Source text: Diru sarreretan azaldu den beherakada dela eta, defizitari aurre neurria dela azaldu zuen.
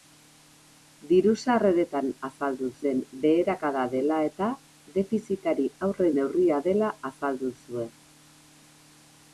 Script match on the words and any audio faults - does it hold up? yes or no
yes